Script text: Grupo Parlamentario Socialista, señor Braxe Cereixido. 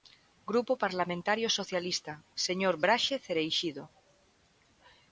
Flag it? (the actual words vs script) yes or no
no